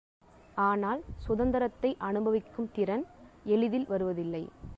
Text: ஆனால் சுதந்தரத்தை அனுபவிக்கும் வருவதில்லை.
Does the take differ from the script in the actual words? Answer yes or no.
yes